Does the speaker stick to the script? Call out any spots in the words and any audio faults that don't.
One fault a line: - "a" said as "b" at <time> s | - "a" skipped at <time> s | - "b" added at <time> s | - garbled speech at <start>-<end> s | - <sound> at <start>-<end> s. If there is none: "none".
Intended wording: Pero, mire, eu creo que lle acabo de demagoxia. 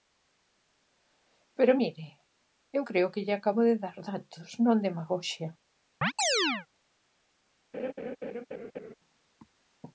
- "dar datos non" added at 3.8 s
- chirp at 6.0-6.7 s
- laugh at 7.7-8.9 s